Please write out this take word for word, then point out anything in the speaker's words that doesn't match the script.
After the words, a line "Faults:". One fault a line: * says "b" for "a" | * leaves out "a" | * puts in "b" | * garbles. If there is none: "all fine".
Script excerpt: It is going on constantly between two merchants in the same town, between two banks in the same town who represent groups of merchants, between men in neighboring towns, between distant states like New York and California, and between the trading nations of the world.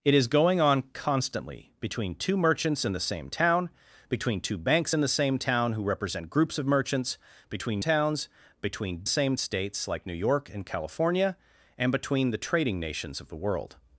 It is going on constantly between two merchants in the same town, between two banks in the same town who represent groups of merchants, between towns, between same states like New York and California, and between the trading nations of the world.
Faults:
* leaves out "men in neighboring"
* says "same" for "distant"